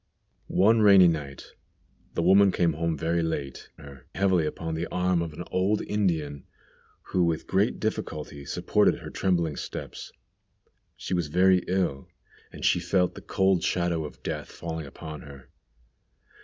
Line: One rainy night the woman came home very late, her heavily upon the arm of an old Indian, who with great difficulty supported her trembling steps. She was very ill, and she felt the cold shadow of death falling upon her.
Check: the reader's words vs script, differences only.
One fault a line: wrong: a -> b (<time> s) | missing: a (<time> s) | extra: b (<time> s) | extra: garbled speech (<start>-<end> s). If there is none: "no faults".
no faults